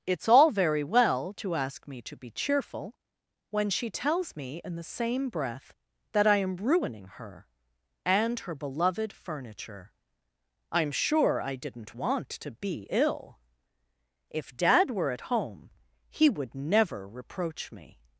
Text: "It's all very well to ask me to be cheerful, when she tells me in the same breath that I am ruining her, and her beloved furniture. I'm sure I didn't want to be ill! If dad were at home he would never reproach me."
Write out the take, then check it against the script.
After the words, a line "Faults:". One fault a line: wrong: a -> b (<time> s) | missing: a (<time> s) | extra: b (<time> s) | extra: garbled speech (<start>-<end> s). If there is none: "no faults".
"It's all very well to ask me to be cheerful, when she tells me in the same breath that I am ruining her, and her beloved furniture. I'm sure I didn't want to be ill! If dad were at home he would never reproach me."
Faults:
no faults